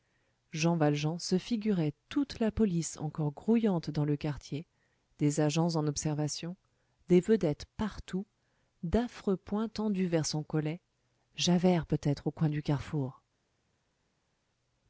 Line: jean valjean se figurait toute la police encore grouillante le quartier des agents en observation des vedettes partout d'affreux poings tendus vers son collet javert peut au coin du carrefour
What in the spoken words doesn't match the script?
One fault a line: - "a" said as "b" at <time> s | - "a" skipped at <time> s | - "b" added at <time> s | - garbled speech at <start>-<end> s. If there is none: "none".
- "dans" added at 3.9 s
- "être" added at 12.0 s